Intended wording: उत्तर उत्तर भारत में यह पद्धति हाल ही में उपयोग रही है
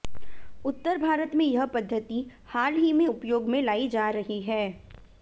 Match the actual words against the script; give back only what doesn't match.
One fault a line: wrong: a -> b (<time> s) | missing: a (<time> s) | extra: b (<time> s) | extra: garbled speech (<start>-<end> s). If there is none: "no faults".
missing: उत्तर (1.0 s)
extra: में लाई जा (3.5 s)